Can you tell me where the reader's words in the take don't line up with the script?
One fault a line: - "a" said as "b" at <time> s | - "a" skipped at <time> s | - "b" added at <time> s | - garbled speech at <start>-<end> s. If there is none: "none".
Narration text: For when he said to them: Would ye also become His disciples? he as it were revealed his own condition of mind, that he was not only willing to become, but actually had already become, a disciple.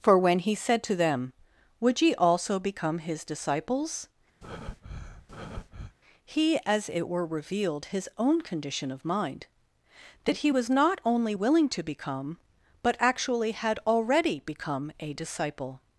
none